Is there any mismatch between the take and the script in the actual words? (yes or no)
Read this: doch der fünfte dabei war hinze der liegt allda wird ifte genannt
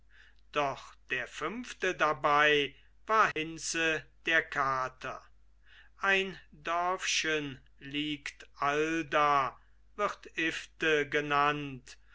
yes